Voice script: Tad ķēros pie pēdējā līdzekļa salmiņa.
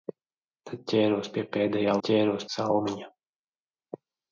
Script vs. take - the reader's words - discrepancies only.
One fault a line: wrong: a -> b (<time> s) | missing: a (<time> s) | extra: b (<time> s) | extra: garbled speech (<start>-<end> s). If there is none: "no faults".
wrong: līdzekļa -> ķēros (2.1 s)